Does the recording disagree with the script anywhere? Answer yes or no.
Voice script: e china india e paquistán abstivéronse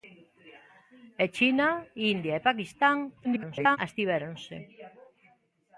yes